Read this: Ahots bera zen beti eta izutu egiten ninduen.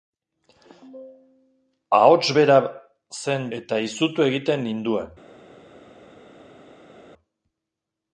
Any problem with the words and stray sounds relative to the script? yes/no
yes